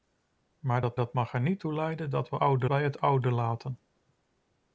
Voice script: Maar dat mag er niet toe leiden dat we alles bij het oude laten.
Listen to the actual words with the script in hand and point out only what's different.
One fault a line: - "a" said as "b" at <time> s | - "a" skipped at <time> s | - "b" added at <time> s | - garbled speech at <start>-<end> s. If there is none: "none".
- "dat" added at 0.9 s
- "alles" said as "oude" at 2.4 s